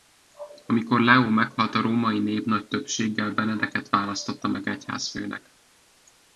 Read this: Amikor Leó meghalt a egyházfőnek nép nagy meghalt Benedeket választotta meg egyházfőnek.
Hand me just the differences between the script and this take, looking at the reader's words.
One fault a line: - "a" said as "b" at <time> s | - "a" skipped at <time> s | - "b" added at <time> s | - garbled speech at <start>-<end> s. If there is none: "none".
- "egyházfőnek" said as "római" at 1.8 s
- "meghalt" said as "többséggel" at 2.7 s